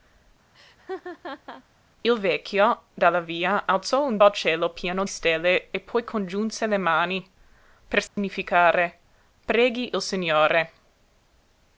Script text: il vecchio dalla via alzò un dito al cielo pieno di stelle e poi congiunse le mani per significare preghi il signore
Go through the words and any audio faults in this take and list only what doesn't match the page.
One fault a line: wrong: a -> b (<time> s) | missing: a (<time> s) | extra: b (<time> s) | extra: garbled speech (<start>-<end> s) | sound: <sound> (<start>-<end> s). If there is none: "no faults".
sound: laugh (0.5-1.6 s)
missing: dito (4.2 s)
missing: di (5.0 s)
sound: dropout (8.1-8.2 s)